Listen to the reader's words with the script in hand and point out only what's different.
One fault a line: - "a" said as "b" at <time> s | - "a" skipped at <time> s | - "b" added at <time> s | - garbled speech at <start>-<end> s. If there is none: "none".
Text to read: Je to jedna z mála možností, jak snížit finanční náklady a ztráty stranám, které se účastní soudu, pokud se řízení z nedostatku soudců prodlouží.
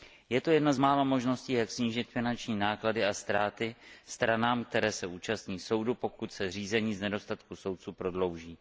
none